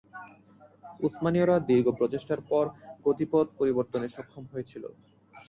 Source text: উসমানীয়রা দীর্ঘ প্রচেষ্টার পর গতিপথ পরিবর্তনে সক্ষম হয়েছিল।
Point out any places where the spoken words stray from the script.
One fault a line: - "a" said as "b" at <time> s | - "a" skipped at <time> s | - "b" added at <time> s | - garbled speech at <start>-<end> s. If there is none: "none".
none